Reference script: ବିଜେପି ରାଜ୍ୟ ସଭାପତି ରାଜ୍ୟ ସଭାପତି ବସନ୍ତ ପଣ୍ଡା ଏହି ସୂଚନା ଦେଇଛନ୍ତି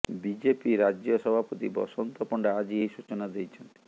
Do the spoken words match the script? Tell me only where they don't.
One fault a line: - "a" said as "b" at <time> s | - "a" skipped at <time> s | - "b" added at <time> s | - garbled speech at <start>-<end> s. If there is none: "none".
- "ରାଜ୍ୟ ସଭାପତି" skipped at 1.7 s
- "ଆଜି" added at 2.6 s